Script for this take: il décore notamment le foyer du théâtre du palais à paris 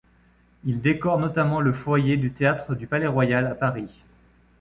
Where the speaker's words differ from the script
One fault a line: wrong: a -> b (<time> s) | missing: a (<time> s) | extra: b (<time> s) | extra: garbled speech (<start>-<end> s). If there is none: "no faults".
extra: royal (3.1 s)